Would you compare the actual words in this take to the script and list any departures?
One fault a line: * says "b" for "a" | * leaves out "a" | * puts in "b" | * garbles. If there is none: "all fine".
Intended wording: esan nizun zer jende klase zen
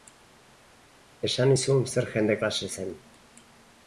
all fine